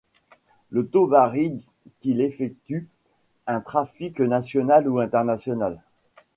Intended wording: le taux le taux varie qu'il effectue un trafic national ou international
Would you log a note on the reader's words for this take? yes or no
yes